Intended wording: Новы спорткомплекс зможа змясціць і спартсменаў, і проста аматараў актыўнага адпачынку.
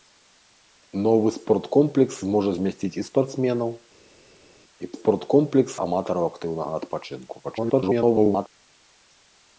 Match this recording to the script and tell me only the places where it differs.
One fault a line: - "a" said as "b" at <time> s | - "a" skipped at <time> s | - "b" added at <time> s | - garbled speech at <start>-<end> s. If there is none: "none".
- "проста" said as "спорткомплекс" at 4.9 s
- garbled speech at 7.4-8.5 s